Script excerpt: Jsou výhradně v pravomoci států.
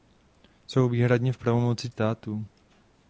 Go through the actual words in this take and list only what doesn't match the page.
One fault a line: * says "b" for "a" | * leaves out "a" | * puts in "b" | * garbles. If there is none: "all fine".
all fine